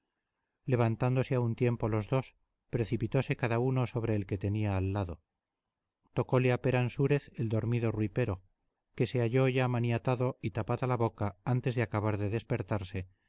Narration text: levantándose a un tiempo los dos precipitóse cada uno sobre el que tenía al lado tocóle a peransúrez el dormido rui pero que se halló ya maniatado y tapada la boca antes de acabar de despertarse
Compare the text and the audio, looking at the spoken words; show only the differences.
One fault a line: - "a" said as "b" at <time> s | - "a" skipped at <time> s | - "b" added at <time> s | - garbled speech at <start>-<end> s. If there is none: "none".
none